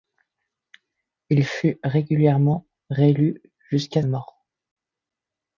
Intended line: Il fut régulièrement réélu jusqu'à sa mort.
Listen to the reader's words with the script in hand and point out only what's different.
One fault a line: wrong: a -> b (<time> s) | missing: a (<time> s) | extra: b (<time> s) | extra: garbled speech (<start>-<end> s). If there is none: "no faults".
missing: sa (4.0 s)